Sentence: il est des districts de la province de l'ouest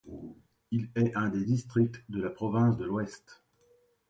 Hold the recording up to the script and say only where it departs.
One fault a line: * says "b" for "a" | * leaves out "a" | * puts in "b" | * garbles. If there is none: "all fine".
* puts in "un"